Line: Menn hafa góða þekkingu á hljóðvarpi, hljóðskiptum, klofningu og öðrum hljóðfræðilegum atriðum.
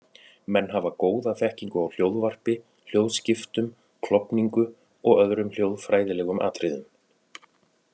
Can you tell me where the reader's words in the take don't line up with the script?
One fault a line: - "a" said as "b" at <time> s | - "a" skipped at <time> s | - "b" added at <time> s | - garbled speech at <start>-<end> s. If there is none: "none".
none